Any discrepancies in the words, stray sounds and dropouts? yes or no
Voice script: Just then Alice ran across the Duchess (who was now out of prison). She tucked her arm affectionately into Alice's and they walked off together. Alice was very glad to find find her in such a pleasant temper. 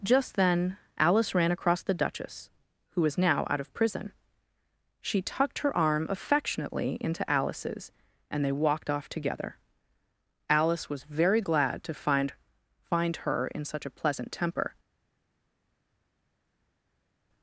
no